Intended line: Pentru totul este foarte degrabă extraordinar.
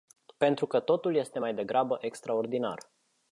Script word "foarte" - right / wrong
wrong